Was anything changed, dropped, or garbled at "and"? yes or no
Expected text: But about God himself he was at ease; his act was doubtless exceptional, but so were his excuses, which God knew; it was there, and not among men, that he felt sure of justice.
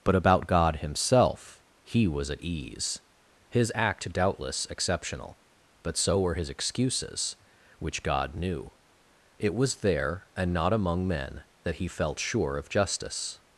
no